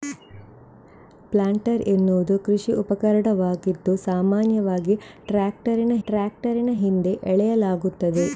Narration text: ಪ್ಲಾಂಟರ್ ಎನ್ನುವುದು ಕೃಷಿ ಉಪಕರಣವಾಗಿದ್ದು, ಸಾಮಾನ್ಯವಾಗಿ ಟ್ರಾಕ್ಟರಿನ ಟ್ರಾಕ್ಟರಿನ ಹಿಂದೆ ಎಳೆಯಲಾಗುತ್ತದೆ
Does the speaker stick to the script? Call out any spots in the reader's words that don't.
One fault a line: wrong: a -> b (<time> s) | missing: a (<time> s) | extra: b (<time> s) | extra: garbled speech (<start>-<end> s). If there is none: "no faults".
no faults